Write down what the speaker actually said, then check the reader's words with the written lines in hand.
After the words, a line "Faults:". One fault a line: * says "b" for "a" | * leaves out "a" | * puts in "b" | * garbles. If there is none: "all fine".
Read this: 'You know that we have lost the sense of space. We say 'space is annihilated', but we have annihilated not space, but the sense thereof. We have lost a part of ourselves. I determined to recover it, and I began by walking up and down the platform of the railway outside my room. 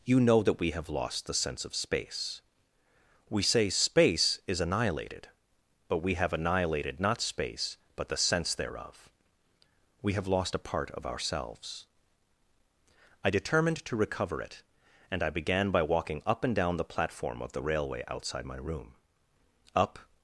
'You know that we have lost the sense of space. We say 'space is annihilated', but we have annihilated not space, but the sense thereof. We have lost a part of ourselves. I determined to recover it, and I began by walking up and down the platform of the railway outside my room. Up
Faults:
* puts in "Up"